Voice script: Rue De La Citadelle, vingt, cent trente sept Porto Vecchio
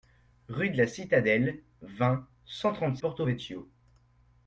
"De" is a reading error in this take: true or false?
false